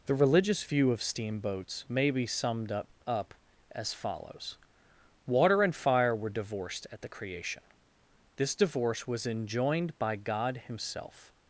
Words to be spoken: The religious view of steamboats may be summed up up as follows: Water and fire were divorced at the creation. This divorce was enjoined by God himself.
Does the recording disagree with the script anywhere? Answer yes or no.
no